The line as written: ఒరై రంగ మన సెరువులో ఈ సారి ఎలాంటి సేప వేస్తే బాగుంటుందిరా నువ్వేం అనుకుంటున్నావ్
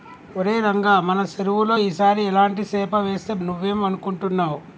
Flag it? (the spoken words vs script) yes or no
yes